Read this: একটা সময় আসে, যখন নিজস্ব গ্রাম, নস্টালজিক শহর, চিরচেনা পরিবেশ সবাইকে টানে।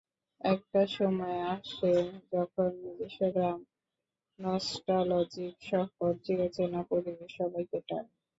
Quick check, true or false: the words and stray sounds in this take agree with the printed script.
true